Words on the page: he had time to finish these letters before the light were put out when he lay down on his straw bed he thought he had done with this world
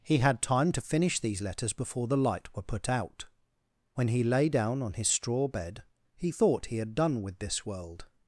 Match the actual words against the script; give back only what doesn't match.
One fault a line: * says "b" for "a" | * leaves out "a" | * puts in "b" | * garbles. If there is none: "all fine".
all fine